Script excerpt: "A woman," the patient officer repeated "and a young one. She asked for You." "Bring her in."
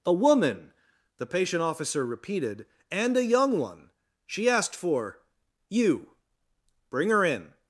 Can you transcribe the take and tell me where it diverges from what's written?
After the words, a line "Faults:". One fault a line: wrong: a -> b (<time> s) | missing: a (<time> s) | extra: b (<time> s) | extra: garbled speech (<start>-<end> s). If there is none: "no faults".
"A woman," the patient officer repeated "and a young one. She asked for You." "Bring her in."
Faults:
no faults